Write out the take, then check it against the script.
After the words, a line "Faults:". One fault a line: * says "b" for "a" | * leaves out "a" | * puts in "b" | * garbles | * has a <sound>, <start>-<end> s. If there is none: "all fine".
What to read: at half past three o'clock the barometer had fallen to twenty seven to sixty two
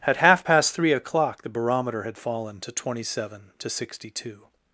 at half past three o'clock the barometer had fallen to twenty seven to sixty two
Faults:
all fine